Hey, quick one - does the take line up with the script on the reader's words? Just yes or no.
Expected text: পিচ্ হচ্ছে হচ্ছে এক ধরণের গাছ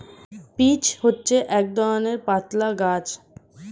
no